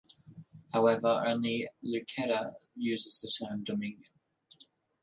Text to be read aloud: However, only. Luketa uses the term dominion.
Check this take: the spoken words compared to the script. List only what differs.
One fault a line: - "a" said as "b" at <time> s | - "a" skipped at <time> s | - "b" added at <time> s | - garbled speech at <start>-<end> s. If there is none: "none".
none